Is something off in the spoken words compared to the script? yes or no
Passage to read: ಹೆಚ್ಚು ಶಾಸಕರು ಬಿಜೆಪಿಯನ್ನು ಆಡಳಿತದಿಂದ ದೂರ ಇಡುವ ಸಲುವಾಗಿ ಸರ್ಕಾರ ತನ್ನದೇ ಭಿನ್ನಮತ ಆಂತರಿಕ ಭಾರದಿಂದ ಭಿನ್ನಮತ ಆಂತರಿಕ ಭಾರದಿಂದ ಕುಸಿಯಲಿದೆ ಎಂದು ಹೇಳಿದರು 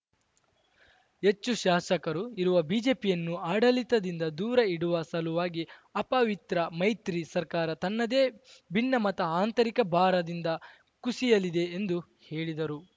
yes